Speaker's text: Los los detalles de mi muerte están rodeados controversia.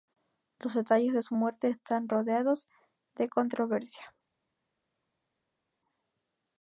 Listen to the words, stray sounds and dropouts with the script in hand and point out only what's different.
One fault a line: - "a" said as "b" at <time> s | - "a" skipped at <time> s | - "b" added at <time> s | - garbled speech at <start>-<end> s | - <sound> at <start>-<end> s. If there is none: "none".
- "los" skipped at 0.7 s
- "mi" said as "su" at 1.2 s
- "de" added at 3.1 s